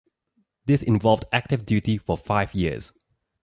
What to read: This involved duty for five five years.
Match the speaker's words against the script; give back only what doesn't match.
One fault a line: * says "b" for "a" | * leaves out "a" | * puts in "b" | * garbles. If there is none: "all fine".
* puts in "active"
* leaves out "five"